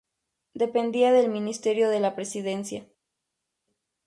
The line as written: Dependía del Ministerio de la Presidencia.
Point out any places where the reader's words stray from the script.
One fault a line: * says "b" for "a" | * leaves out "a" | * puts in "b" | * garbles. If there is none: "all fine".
all fine